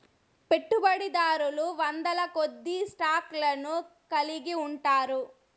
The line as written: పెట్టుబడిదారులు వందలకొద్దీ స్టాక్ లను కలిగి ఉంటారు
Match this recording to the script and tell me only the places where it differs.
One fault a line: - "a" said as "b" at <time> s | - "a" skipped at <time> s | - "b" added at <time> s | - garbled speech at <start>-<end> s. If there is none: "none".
none